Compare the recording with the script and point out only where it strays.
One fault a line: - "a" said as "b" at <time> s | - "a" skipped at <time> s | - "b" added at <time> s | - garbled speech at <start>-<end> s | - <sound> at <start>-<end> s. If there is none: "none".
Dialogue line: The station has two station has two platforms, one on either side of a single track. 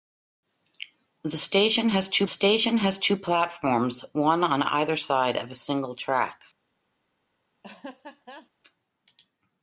- laugh at 7.6-8.5 s